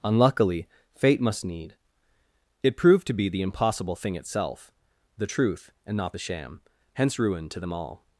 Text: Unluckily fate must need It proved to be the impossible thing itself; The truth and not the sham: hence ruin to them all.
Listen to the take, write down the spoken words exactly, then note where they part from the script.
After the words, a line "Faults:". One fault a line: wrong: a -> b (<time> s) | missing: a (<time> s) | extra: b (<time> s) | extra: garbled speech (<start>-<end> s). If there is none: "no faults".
Unluckily fate must need It proved to be the impossible thing itself; The truth and not the sham: hence ruin to them all.
Faults:
no faults